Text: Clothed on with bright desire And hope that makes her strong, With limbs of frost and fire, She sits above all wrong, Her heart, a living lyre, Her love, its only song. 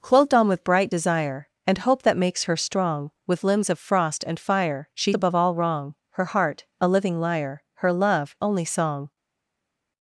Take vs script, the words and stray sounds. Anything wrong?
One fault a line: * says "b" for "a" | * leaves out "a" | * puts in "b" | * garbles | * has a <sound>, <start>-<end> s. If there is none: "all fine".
* leaves out "sits"
* leaves out "its"